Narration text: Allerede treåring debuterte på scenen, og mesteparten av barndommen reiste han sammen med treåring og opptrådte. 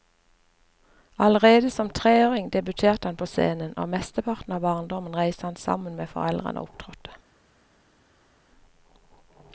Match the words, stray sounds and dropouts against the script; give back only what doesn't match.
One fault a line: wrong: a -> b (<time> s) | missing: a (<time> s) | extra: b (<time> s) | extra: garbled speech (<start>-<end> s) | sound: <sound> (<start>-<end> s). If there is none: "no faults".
extra: som (1.7 s)
extra: han (3.1 s)
wrong: treåring -> foreldrene (6.1 s)